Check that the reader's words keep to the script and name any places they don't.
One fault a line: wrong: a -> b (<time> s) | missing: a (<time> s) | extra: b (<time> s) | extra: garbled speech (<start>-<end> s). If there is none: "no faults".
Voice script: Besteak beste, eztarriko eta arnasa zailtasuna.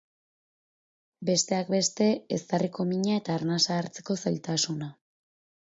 extra: mina (3.0 s)
extra: hartzeko (3.8 s)